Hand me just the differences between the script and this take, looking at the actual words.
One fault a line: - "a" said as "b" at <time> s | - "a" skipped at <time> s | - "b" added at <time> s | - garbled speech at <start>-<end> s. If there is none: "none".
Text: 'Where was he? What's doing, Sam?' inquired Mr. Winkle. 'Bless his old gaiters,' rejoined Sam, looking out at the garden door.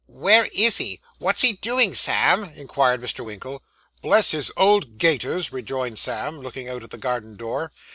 - "was" said as "is" at 0.5 s
- "he" added at 1.4 s